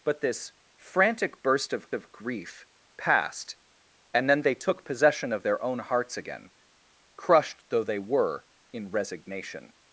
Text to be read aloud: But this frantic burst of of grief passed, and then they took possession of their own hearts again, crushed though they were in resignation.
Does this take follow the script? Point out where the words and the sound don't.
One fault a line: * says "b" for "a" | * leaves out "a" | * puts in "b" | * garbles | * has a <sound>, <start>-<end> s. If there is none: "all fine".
all fine